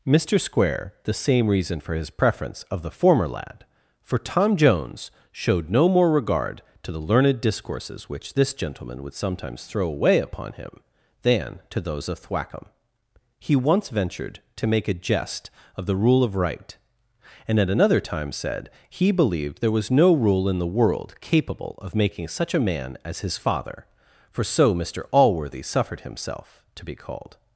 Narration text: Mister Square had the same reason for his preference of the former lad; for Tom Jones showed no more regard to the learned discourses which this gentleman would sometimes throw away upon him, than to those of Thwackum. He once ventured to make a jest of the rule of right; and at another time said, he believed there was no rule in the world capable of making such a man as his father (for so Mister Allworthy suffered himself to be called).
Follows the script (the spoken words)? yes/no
no